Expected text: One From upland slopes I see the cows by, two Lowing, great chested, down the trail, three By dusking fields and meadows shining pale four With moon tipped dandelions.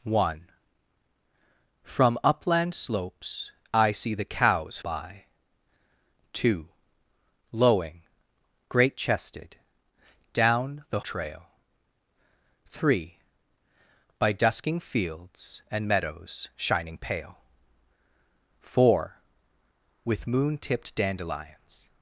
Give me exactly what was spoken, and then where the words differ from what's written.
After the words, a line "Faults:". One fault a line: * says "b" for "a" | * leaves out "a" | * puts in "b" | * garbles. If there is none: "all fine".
One From upland slopes I see the cows by, two Lowing, great chested, down the trail, three By dusking fields and meadows shining pale four With moon tipped dandelions.
Faults:
all fine